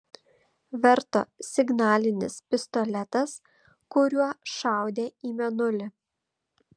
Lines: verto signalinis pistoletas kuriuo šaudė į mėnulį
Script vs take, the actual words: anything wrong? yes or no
no